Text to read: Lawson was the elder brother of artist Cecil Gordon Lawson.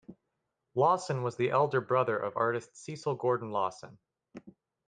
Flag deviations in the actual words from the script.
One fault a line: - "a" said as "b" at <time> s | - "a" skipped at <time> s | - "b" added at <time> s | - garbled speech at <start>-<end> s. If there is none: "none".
none